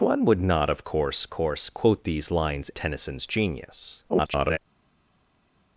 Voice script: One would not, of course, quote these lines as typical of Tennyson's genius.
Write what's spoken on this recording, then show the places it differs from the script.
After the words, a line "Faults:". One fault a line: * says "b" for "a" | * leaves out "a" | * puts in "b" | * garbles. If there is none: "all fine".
One would not, of course course, quote these lines Tennyson's genius. [garbled]
Faults:
* puts in "course"
* leaves out "as typical of"
* garbles